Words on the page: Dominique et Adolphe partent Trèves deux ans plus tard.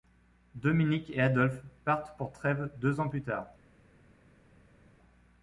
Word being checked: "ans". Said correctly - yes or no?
yes